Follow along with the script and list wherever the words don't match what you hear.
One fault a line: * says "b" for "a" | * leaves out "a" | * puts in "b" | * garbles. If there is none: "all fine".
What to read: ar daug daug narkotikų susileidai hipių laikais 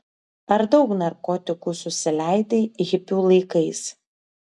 * leaves out "daug"